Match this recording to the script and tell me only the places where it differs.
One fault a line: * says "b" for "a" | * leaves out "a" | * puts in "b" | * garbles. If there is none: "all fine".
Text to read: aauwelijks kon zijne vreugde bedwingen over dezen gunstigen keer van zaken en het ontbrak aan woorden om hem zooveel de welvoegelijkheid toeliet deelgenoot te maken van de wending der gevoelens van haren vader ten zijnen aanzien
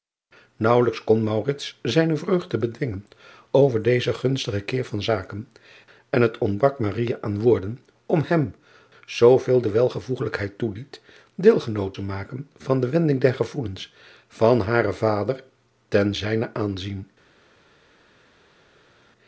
all fine